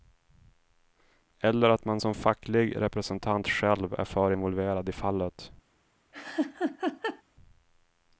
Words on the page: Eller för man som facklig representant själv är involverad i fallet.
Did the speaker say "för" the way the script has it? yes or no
no